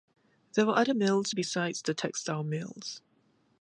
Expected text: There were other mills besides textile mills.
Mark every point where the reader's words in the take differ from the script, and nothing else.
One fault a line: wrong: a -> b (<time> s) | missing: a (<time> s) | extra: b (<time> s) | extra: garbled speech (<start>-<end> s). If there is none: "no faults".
extra: the (1.8 s)